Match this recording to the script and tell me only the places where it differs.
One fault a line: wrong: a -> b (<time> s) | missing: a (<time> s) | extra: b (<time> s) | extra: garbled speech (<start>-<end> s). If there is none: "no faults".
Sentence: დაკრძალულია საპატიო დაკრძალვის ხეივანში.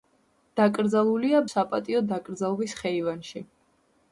no faults